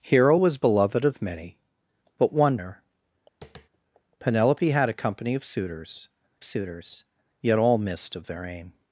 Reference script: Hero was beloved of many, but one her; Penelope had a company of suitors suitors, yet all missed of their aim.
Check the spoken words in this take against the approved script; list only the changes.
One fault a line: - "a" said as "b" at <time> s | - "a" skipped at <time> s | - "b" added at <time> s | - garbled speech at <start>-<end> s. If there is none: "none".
none